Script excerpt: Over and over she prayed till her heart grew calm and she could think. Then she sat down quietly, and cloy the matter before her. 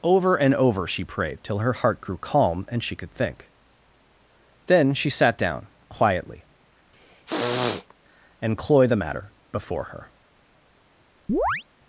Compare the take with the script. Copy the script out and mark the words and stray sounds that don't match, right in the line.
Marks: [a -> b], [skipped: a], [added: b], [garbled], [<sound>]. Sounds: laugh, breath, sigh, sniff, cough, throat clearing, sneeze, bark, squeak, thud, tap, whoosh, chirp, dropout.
Over and over she prayed till her heart grew calm and she could think. Then she sat down quietly, [throat clearing] and cloy the matter before her. [chirp]